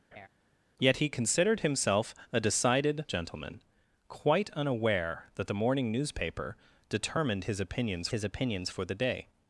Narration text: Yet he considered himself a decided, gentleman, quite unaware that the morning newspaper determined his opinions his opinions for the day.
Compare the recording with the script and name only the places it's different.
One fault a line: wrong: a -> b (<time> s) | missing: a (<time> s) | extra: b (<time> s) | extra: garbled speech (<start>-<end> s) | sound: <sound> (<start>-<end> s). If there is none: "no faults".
sound: laugh (0.1-0.3 s)